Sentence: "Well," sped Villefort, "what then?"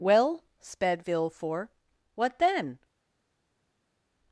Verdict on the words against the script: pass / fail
pass